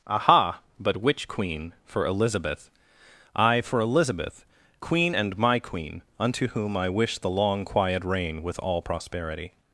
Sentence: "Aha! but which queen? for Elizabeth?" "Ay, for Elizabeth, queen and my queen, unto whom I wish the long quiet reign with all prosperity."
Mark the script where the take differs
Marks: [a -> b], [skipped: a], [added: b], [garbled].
"Aha! but which queen? for Elizabeth?" "Ay, for Elizabeth, queen and my queen, unto whom I wish the long quiet reign with all prosperity."